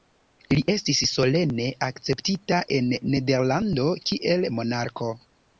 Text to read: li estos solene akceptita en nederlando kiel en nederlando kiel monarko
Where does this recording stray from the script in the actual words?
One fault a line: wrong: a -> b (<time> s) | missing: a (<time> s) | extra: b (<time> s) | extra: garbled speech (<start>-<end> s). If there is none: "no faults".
wrong: estos -> estis (0.7 s)
missing: en nederlando kiel (4.5 s)